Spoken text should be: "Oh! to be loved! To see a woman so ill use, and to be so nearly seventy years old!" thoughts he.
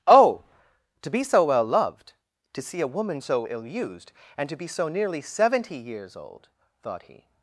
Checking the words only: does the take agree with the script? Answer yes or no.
no